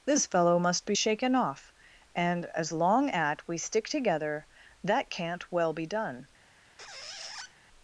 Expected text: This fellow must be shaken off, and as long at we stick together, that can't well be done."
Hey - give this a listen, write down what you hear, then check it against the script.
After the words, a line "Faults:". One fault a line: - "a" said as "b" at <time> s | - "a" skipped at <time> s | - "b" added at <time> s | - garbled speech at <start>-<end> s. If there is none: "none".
This fellow must be shaken off, and as long at we stick together, that can't well be done."
Faults:
none